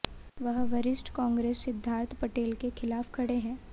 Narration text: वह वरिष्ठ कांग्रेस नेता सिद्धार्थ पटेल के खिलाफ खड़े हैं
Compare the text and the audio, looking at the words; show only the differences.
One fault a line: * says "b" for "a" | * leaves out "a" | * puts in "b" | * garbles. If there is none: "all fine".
* leaves out "नेता"